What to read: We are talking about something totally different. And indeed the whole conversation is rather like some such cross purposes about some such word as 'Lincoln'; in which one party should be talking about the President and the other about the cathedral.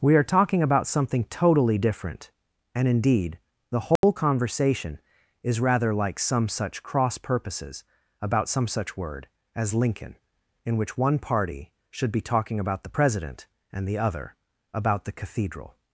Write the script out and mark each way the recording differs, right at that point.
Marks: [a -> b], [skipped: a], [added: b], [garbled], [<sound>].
We are talking about something totally different. And indeed the whole [dropout] conversation is rather like some such cross purposes about some such word as 'Lincoln'; in which one party should be talking about the President and the other about the cathedral.